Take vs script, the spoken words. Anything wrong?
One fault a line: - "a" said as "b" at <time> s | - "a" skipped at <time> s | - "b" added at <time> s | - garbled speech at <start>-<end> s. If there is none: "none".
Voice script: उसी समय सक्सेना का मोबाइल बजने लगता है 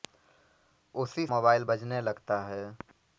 - "समय सक्सेना का" skipped at 1.2 s